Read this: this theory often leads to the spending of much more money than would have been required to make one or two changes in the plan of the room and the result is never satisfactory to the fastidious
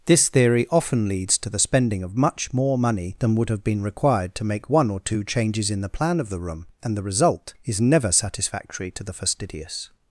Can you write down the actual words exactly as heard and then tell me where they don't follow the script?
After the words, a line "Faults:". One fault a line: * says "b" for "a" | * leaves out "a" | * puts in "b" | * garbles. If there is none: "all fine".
this theory often leads to the spending of much more money than would have been required to make one or two changes in the plan of the room and the result is never satisfactory to the fastidious
Faults:
all fine